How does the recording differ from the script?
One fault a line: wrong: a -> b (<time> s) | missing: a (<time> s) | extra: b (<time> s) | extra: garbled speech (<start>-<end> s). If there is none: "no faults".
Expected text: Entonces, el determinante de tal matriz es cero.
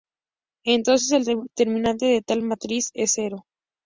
no faults